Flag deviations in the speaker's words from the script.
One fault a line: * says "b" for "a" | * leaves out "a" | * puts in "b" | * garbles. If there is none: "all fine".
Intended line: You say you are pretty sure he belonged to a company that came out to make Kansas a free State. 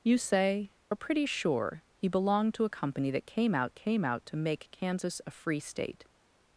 * leaves out "you"
* puts in "came out"